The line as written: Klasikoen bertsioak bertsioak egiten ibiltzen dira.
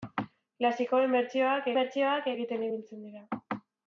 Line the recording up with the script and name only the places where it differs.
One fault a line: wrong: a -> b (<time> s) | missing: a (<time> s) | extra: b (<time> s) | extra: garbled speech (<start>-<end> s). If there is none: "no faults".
no faults